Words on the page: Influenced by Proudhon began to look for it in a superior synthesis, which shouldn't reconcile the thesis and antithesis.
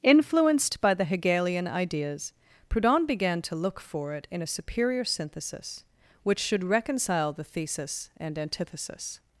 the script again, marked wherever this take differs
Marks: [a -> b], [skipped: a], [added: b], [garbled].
Influenced by [added: the Hegelian ideas] Proudhon began to look for it in a superior synthesis, which [shouldn't -> should] reconcile the thesis and antithesis.